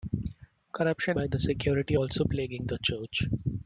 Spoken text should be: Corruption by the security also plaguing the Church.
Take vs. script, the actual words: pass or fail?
pass